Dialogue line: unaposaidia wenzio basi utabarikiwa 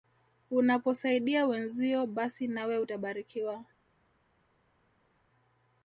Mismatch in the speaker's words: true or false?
true